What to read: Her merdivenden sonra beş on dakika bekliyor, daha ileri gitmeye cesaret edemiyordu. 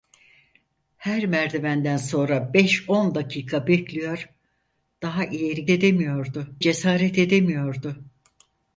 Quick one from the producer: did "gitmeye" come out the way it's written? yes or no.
no